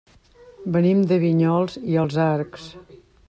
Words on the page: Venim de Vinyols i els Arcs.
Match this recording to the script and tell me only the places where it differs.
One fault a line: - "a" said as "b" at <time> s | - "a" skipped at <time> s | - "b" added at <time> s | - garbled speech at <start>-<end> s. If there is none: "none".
none